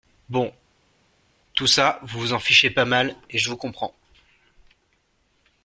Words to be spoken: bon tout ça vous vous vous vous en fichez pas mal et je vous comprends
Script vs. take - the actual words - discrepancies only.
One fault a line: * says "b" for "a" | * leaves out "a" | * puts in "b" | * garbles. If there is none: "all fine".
* leaves out "vous vous"